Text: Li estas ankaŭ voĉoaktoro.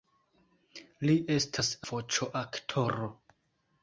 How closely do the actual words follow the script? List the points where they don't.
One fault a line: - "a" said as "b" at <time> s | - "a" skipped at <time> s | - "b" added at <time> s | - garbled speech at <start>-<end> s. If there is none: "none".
- "ankaŭ" skipped at 1.7 s